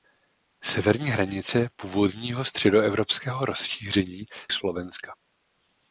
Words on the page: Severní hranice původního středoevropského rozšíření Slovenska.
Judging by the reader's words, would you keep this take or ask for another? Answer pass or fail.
pass